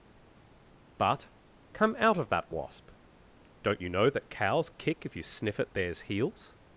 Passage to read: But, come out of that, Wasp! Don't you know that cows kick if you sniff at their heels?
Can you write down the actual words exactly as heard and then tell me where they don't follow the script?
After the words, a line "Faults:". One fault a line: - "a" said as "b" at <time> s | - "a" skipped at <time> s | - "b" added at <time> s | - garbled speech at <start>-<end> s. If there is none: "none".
But, come out of that, Wasp! Don't you know that cows kick if you sniff at theirs heels?
Faults:
- "their" said as "theirs" at 5.7 s